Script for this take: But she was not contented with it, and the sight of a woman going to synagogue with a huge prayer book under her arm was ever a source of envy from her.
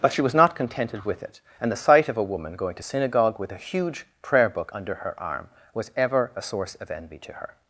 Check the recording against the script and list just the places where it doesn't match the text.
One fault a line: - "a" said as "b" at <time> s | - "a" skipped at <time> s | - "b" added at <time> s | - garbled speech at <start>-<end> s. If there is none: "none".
- "from" said as "to" at 7.2 s